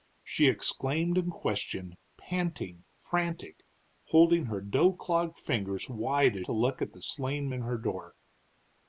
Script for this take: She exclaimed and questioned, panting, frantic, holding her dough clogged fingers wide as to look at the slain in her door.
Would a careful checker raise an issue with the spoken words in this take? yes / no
no